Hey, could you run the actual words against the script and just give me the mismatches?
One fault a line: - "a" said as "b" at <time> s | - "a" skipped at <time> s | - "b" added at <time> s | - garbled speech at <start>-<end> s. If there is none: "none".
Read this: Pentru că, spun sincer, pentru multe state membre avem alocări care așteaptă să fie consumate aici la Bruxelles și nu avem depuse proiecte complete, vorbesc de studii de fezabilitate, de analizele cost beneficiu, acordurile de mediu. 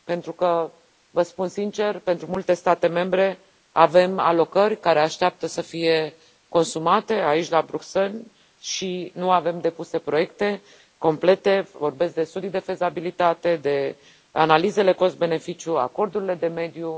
- "vă" added at 1.1 s